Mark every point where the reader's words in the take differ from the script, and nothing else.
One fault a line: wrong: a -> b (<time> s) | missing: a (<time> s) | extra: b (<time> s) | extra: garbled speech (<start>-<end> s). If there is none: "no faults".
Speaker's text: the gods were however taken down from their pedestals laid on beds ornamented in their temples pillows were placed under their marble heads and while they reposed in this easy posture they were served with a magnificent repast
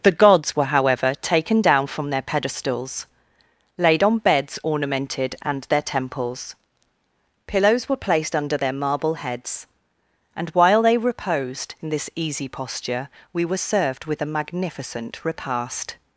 wrong: in -> and (5.4 s)
wrong: they -> we (13.3 s)